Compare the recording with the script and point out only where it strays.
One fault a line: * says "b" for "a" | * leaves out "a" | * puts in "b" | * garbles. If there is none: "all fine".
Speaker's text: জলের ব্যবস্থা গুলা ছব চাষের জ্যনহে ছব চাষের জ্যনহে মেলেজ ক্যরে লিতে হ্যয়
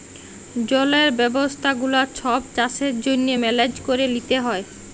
* leaves out "ছব চাষের জ্যনহে"